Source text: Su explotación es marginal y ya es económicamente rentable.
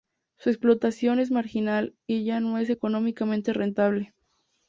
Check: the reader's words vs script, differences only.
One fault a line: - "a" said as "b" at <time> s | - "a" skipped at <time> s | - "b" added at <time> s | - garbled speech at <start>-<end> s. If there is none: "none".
- "no" added at 2.4 s